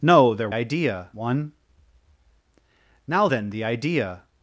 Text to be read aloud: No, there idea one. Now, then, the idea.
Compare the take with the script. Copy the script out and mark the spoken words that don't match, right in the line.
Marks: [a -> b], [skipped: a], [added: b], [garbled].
No, there idea one. Now, then, the idea.